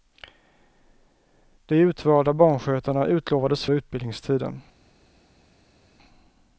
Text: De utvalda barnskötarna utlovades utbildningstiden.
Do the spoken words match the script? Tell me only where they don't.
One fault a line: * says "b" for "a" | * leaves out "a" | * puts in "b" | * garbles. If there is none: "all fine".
all fine